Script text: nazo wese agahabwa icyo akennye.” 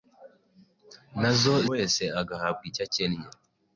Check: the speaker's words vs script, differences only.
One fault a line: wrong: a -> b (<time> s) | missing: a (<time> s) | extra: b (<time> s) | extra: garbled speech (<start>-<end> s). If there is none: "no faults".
no faults